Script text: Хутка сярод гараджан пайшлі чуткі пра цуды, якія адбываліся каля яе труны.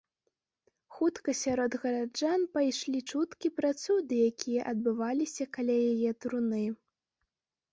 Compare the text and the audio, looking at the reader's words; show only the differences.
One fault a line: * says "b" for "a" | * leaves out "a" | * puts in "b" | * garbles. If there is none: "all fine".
all fine